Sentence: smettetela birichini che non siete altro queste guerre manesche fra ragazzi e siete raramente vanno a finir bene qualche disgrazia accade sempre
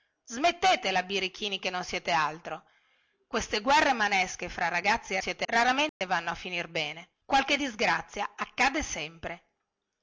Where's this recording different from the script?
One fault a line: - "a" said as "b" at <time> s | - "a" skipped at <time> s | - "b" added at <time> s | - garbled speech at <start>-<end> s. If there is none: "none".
none